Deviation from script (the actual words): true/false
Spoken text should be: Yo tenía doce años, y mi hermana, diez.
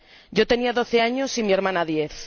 false